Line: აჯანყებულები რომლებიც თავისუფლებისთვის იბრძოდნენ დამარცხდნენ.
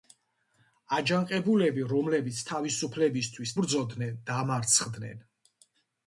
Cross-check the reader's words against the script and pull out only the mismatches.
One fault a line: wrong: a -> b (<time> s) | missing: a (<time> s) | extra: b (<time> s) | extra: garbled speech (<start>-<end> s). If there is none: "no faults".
no faults